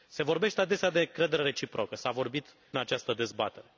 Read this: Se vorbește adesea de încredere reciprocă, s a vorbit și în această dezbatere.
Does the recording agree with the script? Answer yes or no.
no